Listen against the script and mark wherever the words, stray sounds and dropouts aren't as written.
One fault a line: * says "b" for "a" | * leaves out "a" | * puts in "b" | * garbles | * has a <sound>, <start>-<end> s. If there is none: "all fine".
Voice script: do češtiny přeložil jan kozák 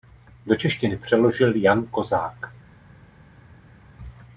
all fine